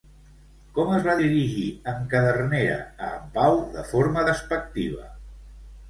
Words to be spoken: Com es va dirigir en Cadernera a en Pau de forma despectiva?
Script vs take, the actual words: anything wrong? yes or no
no